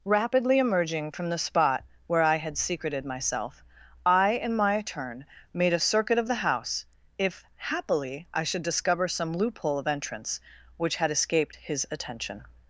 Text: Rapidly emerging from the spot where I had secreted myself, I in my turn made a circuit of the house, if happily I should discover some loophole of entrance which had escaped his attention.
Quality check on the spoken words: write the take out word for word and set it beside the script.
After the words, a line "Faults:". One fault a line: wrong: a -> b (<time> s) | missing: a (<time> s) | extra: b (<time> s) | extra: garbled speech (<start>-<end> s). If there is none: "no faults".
Rapidly emerging from the spot where I had secreted myself, I in my turn made a circuit of the house, if happily I should discover some loophole of entrance which had escaped his attention.
Faults:
no faults